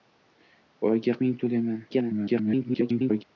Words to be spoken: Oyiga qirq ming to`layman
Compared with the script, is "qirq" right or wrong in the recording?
wrong